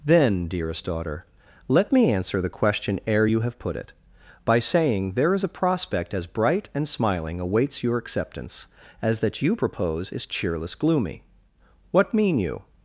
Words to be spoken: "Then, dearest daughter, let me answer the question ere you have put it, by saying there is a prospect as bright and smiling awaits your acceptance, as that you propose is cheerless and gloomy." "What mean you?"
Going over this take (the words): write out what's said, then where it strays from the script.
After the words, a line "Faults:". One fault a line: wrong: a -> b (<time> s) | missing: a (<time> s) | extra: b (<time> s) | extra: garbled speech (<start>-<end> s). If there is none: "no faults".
"Then, dearest daughter, let me answer the question ere you have put it, by saying there is a prospect as bright and smiling awaits your acceptance, as that you propose is cheerless gloomy." "What mean you?"
Faults:
missing: and (10.8 s)